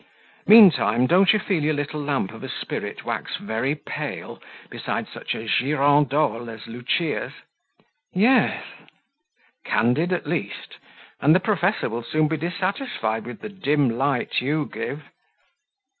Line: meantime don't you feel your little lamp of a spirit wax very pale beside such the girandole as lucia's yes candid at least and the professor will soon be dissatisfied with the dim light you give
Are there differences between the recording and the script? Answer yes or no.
yes